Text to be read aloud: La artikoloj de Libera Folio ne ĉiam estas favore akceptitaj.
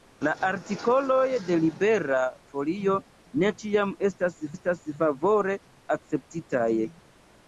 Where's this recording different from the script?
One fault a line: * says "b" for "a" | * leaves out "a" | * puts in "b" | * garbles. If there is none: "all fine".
* puts in "estas"